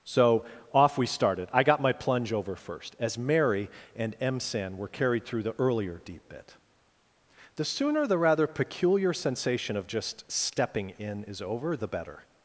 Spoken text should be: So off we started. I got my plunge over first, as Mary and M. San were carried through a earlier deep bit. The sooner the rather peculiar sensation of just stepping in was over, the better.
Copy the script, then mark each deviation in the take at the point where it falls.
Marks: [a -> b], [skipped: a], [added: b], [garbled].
So off we started. I got my plunge over first, as Mary and M. San were carried through [a -> the] earlier deep bit. The sooner the rather peculiar sensation of just stepping in [was -> is] over, the better.